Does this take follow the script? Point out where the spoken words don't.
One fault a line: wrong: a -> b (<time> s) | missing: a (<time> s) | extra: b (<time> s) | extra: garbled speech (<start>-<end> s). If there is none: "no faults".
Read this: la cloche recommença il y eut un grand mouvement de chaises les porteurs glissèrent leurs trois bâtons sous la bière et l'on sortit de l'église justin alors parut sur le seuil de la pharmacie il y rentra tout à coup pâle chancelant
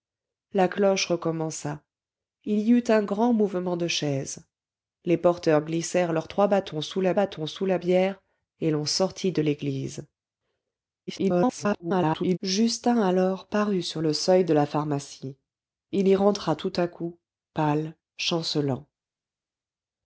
extra: bâtons sous la (7.1 s)
extra: garbled speech (11.1-12.4 s)